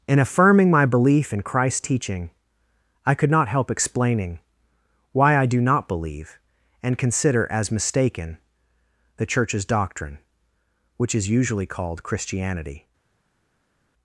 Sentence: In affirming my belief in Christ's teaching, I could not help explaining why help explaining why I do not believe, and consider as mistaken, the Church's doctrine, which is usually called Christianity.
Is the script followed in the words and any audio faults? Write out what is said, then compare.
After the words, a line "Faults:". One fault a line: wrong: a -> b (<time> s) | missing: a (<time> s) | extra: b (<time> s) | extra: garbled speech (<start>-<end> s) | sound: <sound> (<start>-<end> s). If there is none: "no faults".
In affirming my belief in Christ's teaching, I could not help explaining why I do not believe, and consider as mistaken, the Church's doctrine, which is usually called Christianity.
Faults:
missing: help explaining why (5.4 s)